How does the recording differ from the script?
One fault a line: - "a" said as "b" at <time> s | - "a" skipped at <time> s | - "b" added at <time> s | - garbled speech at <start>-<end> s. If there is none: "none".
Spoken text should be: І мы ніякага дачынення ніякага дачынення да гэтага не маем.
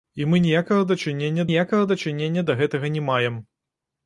none